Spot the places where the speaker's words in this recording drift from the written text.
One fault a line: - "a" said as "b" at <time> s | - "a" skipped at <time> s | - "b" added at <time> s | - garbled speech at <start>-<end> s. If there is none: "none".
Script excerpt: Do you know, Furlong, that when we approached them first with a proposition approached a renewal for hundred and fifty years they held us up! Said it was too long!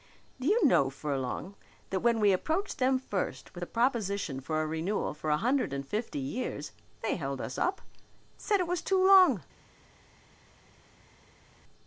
- "approached" said as "for" at 4.4 s
- "a" added at 5.3 s